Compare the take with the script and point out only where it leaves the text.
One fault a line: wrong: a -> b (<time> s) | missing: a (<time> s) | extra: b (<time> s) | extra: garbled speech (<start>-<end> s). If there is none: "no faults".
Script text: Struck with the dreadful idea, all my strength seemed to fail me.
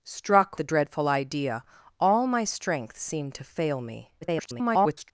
missing: with (0.6 s)
extra: garbled speech (4.2-5.1 s)